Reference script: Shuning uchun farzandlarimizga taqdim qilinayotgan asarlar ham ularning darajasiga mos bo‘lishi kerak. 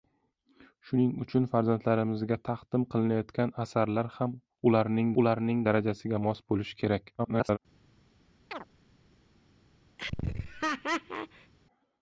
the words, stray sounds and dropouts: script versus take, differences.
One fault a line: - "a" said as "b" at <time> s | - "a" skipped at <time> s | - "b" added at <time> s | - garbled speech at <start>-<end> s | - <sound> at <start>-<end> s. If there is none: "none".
- "ularning" added at 5.2 s
- garbled speech at 7.2-7.6 s
- chirp at 8.5-8.7 s
- laugh at 10.0-11.5 s